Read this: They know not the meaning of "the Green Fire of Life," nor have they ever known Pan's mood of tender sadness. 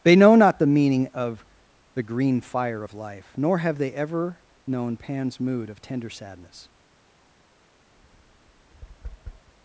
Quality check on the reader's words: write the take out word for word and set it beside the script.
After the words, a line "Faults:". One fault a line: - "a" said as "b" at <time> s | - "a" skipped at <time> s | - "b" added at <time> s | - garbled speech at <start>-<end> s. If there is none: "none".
They know not the meaning of "the Green Fire of Life," nor have they ever known Pan's mood of tender sadness.
Faults:
none